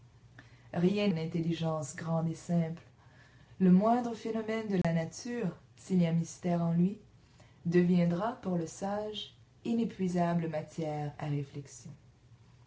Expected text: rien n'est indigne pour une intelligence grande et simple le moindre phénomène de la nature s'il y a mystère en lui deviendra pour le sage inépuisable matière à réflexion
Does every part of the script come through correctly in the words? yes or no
no